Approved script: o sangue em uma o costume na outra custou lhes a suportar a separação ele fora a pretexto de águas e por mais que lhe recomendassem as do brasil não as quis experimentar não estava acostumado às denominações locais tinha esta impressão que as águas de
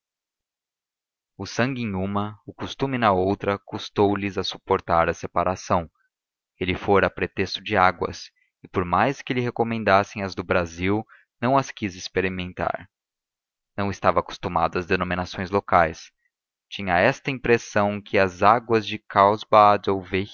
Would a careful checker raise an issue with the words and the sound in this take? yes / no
no